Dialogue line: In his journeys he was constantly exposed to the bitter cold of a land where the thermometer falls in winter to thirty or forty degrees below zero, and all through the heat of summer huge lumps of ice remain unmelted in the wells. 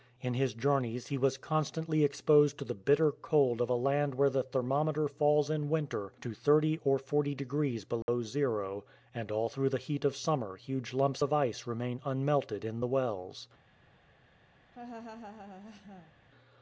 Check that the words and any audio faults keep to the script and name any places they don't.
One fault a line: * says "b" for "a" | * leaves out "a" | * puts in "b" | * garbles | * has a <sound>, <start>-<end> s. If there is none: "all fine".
* has a dropout, 8.0-8.1 s
* has a laugh, 14.7-16.1 s